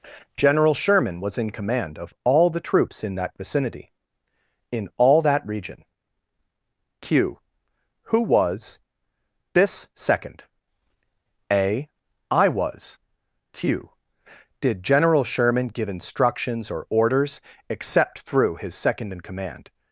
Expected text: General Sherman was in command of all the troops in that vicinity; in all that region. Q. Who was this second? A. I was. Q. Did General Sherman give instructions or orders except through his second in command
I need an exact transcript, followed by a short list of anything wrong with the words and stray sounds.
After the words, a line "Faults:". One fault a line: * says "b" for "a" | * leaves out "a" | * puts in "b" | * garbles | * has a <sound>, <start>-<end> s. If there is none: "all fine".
General Sherman was in command of all the troops in that vicinity; in all that region. Q. Who was this second? A. I was. Q. Did General Sherman give instructions or orders except through his second in command
Faults:
all fine